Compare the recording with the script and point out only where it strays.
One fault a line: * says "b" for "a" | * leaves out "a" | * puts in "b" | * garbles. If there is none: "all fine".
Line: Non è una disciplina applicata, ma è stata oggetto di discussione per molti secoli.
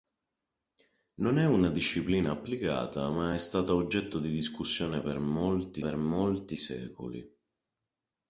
* puts in "per molti"